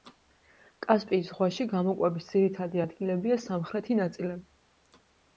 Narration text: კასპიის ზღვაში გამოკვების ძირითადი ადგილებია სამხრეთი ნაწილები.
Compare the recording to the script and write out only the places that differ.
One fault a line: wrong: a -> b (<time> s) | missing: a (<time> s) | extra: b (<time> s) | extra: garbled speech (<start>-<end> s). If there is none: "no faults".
no faults